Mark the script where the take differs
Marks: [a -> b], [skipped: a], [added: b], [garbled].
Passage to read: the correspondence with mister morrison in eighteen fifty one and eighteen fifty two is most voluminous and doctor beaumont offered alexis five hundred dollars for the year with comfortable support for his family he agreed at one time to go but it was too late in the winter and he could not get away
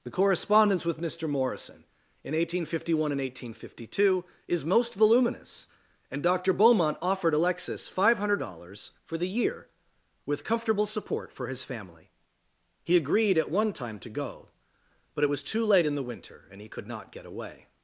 the correspondence with mister morrison in eighteen fifty one and eighteen fifty two is most voluminous and doctor beaumont offered alexis five hundred dollars for the year with comfortable support for his family he agreed at one time to go but it was too late in the winter and he could not get away